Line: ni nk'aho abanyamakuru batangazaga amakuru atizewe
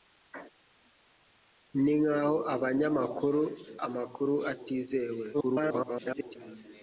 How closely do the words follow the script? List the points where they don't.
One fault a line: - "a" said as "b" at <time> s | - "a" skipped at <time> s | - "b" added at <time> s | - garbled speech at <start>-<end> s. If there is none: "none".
- "batangazaga" skipped at 3.4 s
- garbled speech at 5.3-6.4 s